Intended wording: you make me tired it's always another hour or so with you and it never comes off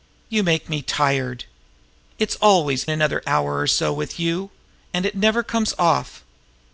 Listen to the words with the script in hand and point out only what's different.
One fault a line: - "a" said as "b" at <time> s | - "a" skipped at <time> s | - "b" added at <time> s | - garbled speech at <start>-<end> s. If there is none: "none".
none